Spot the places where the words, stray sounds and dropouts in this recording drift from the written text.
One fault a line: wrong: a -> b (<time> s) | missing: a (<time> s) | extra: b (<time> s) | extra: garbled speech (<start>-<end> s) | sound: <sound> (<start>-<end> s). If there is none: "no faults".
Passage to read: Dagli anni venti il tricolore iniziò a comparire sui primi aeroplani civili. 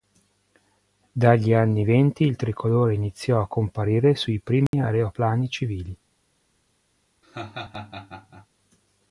sound: dropout (4.7-4.7 s)
sound: laugh (7.2-8.5 s)